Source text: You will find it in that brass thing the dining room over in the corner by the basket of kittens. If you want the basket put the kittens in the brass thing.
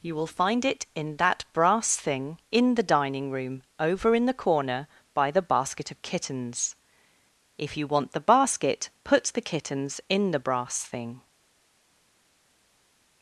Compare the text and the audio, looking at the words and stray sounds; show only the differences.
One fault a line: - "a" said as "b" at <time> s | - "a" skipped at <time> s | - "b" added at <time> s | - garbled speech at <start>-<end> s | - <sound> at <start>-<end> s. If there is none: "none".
- "in" added at 2.5 s